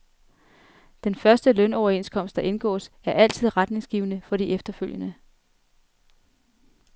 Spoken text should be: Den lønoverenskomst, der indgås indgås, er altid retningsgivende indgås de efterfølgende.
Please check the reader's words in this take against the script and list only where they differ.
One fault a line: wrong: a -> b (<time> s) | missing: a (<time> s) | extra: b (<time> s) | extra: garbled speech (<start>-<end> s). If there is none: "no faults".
extra: første (1.1 s)
missing: indgås (2.9 s)
wrong: indgås -> for (4.2 s)